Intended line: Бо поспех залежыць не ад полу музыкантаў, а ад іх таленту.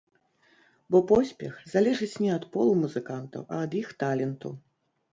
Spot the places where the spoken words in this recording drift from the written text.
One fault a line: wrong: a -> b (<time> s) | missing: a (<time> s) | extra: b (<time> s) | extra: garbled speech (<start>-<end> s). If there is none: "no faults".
no faults